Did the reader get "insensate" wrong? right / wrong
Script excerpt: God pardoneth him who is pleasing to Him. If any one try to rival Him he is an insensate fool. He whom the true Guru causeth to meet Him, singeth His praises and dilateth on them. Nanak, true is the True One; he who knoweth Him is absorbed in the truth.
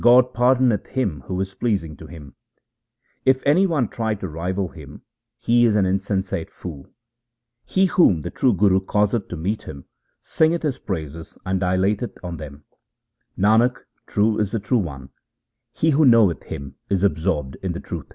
right